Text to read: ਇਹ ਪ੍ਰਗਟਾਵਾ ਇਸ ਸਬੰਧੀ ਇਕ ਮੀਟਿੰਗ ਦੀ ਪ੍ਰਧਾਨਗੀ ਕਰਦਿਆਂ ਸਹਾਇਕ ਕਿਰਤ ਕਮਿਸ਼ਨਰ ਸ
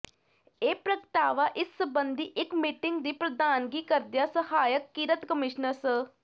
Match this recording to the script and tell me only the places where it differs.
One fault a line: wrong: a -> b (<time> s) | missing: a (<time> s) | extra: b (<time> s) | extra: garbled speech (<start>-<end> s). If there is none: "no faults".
no faults